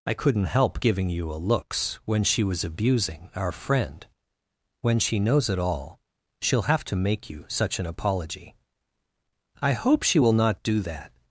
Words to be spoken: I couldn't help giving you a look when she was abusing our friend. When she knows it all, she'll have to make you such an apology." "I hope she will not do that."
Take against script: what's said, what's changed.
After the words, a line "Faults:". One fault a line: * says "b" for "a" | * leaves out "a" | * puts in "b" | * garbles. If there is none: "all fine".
I couldn't help giving you a looks when she was abusing our friend. When she knows it all, she'll have to make you such an apology." "I hope she will not do that."
Faults:
* says "looks" for "look"